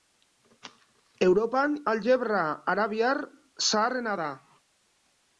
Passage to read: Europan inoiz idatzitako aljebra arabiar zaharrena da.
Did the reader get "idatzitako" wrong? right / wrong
wrong